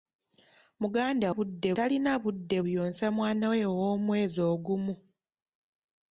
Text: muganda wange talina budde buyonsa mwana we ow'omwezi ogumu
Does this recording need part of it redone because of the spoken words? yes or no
yes